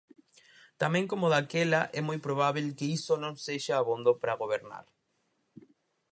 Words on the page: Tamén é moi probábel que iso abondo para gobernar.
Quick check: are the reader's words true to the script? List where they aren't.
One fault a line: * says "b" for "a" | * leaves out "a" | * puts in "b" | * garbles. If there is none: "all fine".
* puts in "como daquela"
* puts in "non sexa"